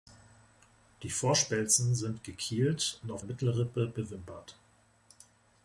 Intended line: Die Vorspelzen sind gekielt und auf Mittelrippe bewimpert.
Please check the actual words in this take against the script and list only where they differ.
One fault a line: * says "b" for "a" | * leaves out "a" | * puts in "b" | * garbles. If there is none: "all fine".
all fine